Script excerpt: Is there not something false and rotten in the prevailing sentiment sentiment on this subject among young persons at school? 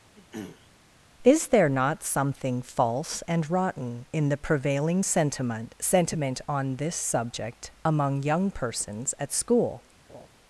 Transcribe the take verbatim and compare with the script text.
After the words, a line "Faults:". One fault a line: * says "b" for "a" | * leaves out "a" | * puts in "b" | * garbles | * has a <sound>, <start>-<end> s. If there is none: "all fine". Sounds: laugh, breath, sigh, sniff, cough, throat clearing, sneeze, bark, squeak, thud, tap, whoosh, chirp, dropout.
Is there not something false and rotten in the prevailing sentiment sentiment on this subject among young persons at school?
Faults:
* has a throat clearing, 0.2-0.7 s
* has a laugh, 10.1-10.3 s